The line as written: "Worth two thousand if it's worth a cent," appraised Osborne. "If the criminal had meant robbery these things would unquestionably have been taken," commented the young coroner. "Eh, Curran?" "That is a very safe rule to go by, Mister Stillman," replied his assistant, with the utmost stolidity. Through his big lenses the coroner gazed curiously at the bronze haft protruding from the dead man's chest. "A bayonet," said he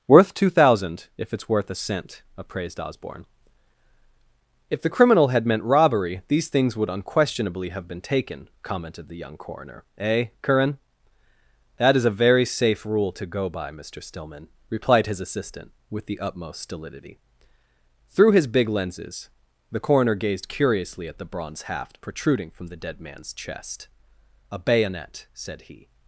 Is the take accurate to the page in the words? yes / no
yes